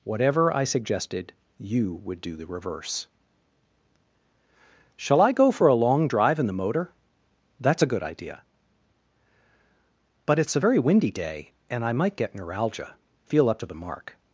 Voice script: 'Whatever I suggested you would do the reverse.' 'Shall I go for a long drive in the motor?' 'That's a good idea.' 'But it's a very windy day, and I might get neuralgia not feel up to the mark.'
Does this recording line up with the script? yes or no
no